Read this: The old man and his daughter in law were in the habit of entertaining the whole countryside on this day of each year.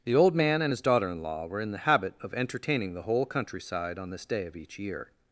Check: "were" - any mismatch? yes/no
no